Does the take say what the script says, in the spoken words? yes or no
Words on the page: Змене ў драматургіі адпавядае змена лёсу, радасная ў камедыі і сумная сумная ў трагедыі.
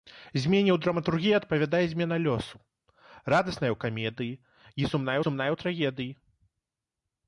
yes